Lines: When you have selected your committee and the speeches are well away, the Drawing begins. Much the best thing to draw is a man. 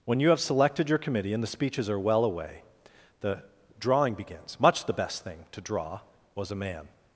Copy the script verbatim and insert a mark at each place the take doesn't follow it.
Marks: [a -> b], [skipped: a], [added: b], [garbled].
When you have selected your committee and the speeches are well away, the Drawing begins. Much the best thing to draw [is -> was] a man.